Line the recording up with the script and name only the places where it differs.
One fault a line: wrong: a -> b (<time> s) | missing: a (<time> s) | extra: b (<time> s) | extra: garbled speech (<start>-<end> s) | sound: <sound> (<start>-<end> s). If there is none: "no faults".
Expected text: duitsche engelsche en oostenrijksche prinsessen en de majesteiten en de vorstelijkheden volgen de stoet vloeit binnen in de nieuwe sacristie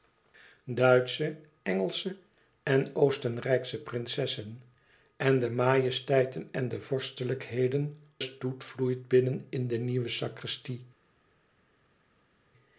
missing: volgen de (8.0 s)